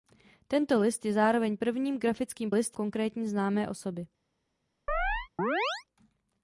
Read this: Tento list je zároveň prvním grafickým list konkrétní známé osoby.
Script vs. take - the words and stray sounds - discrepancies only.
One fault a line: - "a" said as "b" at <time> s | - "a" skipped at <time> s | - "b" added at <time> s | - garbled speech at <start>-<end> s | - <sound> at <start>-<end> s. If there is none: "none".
- chirp at 4.9-5.8 s